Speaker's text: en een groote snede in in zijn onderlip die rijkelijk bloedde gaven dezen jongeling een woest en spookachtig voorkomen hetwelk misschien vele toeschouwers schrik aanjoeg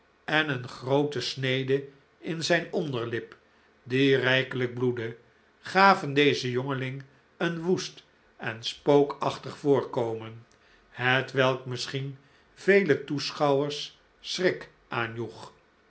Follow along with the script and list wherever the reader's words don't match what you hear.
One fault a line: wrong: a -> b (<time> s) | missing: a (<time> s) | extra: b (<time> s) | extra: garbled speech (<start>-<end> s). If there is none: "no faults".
missing: in (2.4 s)